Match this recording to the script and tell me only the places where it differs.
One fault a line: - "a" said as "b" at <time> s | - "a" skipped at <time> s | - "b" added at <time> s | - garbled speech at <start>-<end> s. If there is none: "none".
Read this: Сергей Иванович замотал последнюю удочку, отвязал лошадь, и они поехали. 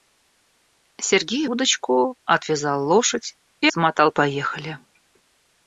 - "Иванович замотал последнюю" skipped at 1.4 s
- "они" said as "замотал" at 3.7 s